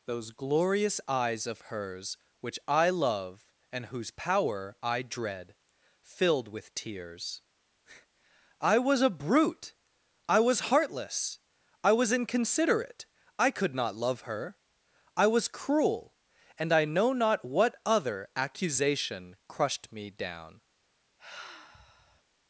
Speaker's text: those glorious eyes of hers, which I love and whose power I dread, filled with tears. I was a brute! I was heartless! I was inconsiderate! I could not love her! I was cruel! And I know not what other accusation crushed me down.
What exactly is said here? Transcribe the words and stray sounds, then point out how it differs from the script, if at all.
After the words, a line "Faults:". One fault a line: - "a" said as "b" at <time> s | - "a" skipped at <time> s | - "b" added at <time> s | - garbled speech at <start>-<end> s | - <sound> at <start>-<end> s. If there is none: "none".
those glorious eyes of hers, which I love and whose power I dread, filled with tears. I was a brute! I was heartless! I was inconsiderate! I could not love her! I was cruel! And I know not what other accusation crushed me down.
Faults:
- sigh at 21.2-22.2 s